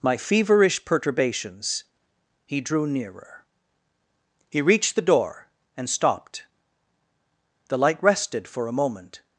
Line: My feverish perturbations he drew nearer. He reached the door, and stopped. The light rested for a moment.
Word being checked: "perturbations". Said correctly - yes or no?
yes